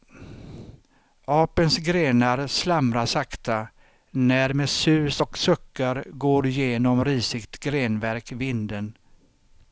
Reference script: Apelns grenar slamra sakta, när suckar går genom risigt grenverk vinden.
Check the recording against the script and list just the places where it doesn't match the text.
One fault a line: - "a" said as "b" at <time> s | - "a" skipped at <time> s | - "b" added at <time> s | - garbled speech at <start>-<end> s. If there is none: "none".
- "med sus och" added at 4.5 s